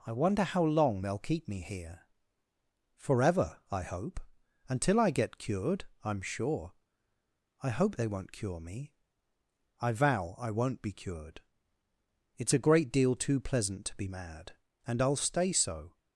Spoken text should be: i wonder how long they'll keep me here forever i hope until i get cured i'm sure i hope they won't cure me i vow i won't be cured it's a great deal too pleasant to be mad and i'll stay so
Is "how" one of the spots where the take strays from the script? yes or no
no